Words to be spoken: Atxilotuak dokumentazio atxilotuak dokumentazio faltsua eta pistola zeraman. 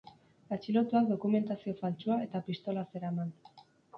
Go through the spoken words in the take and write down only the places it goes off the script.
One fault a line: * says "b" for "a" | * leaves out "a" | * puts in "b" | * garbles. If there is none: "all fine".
* leaves out "atxilotuak dokumentazio"